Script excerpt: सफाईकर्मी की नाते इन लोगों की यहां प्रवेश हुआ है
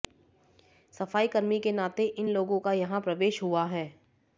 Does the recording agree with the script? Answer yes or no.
no